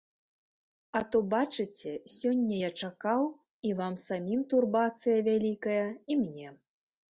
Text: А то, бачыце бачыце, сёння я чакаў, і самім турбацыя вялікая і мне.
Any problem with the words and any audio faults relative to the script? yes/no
yes